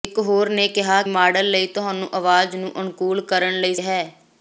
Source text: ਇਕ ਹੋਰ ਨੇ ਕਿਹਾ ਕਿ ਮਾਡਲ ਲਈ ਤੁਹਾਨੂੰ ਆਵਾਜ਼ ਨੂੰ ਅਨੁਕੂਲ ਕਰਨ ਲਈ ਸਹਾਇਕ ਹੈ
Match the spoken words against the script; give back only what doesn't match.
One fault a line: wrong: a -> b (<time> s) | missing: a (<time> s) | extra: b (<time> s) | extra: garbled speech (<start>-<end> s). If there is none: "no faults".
missing: ਕਿ (1.0 s)
missing: ਸਹਾਇਕ (3.7 s)